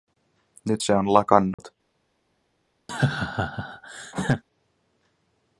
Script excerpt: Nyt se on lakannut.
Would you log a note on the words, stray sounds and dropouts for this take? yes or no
yes